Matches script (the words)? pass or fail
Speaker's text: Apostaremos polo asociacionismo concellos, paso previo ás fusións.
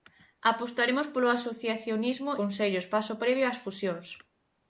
pass